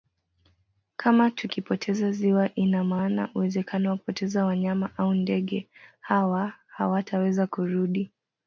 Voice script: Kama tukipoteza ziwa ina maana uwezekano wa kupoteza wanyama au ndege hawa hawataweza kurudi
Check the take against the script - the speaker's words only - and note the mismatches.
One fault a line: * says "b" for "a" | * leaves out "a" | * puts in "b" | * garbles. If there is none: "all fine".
all fine